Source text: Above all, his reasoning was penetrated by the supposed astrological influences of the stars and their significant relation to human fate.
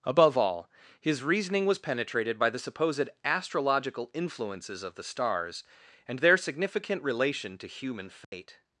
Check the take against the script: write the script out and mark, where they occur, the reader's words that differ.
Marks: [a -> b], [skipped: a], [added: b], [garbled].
Above all, his reasoning was penetrated by the supposed astrological influences of the stars and their significant relation to human fate.